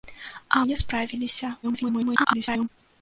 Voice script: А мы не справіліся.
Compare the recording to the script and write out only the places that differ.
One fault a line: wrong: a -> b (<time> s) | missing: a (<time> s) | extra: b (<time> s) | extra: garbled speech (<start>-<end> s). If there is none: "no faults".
missing: мы (0.7 s)
extra: garbled speech (1.6-2.7 s)